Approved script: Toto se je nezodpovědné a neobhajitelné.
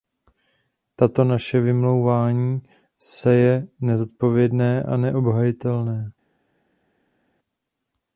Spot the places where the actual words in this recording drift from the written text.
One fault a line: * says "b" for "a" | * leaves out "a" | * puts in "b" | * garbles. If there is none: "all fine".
* puts in "naše vymlouvání"